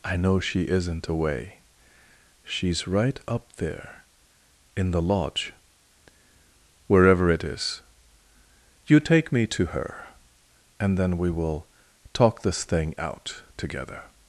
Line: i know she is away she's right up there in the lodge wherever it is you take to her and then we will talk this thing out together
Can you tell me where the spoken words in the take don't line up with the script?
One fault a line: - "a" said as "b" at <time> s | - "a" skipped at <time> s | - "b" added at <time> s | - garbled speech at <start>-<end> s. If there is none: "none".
- "is" said as "isn't" at 0.7 s
- "me" added at 9.3 s